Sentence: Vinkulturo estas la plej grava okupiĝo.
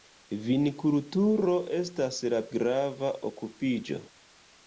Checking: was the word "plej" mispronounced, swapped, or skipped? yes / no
yes